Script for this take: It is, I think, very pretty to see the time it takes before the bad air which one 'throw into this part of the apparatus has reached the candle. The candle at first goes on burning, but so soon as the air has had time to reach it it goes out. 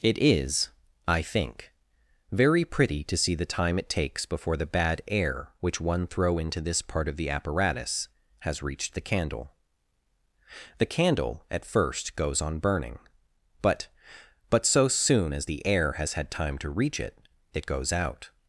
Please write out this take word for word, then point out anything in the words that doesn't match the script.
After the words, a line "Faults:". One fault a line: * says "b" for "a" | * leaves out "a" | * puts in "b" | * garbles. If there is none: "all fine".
It is, I think, very pretty to see the time it takes before the bad air which one 'throw into this part of the apparatus has reached the candle. The candle at first goes on burning, but but so soon as the air has had time to reach it it goes out.
Faults:
* puts in "but"